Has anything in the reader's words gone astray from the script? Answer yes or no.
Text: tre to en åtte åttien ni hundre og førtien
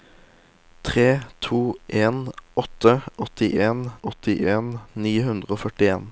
yes